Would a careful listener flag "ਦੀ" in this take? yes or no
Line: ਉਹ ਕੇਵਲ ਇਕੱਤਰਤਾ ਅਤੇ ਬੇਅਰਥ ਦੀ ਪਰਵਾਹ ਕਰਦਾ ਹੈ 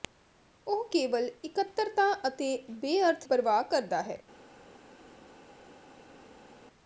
yes